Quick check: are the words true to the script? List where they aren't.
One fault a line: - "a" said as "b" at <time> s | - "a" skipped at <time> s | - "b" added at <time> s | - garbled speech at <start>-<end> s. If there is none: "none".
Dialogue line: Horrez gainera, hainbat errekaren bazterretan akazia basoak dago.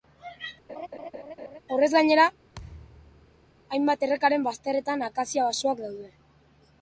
- "dago" said as "daude" at 5.9 s